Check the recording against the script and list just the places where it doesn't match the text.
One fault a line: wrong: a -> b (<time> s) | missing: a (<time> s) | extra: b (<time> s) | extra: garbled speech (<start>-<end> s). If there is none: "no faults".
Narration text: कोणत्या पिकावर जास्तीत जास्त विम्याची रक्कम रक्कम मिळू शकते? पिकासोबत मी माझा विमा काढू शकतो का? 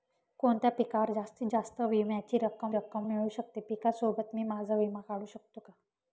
no faults